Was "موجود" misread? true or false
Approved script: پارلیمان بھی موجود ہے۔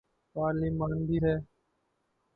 true